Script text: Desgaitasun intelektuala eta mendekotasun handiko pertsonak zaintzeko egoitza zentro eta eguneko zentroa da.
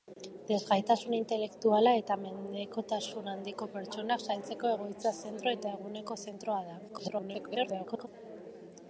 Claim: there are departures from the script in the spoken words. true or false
true